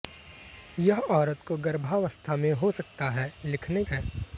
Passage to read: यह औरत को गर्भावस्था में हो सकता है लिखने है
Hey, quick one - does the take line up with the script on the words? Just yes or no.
yes